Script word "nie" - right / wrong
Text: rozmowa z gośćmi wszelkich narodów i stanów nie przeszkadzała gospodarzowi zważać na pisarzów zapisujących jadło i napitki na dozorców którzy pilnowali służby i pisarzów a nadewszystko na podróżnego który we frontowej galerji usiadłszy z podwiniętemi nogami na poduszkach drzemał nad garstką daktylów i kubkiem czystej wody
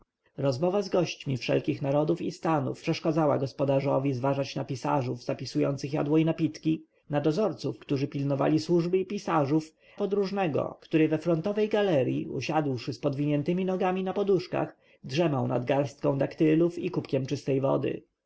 wrong